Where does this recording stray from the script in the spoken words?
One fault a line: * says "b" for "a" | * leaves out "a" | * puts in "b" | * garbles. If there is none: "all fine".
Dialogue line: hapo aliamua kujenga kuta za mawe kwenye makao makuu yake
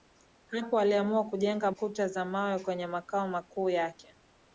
all fine